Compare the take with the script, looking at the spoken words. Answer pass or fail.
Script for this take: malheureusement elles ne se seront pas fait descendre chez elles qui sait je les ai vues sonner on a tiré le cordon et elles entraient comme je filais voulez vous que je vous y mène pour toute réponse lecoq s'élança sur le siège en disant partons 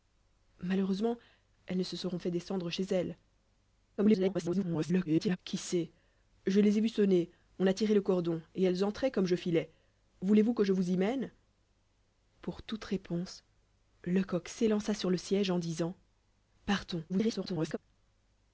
fail